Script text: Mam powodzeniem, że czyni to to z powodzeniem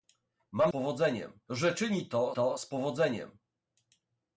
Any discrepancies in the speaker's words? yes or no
no